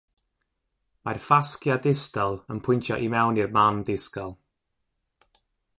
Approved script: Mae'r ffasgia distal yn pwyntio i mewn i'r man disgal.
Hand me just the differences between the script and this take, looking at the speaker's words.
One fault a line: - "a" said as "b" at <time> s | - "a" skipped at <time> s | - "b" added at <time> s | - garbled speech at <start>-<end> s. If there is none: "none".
none